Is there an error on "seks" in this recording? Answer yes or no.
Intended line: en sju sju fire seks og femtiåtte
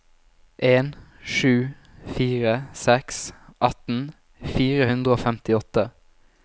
yes